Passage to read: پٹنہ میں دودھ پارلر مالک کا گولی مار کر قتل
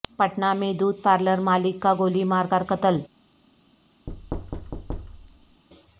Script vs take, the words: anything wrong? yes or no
no